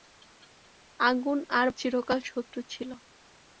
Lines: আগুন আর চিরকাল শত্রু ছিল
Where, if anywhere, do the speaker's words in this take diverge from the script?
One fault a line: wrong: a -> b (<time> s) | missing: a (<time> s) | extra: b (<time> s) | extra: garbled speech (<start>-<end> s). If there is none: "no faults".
no faults